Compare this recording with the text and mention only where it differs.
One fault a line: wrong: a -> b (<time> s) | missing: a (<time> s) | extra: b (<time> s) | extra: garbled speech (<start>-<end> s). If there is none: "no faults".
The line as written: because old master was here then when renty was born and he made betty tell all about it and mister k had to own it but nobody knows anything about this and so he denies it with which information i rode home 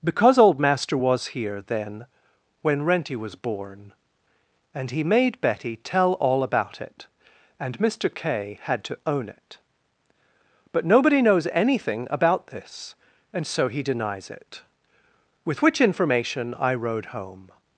no faults